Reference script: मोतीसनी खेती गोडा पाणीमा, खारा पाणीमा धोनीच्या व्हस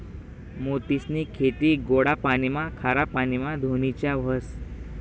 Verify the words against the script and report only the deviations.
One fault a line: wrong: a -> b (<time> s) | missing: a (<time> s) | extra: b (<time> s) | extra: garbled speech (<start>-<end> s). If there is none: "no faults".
no faults